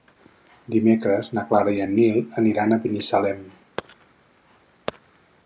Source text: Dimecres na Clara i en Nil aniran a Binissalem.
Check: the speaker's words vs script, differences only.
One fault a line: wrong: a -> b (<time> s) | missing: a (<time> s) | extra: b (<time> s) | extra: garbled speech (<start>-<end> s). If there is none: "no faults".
no faults